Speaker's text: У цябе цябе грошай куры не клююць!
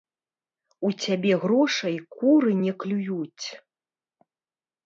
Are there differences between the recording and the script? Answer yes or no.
yes